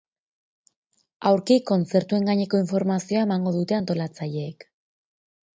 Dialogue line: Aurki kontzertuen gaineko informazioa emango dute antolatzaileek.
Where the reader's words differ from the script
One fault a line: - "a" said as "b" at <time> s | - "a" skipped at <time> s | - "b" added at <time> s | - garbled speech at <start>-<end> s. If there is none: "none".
none